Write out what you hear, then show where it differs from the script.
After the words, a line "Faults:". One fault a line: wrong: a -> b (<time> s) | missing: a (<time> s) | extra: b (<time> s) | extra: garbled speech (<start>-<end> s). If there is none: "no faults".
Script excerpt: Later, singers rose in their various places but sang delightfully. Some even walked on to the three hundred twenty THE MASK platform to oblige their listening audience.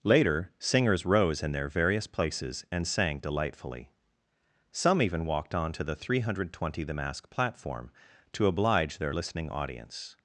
Later, singers rose in their various places and sang delightfully. Some even walked on to the three hundred twenty THE MASK platform to oblige their listening audience.
Faults:
wrong: but -> and (2.7 s)